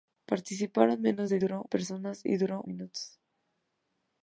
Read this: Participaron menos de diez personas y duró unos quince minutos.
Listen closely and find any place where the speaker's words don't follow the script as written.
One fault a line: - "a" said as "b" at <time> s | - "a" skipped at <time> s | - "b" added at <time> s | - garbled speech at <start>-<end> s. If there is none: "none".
- "diez" said as "duró" at 1.4 s
- "unos quince" skipped at 2.6 s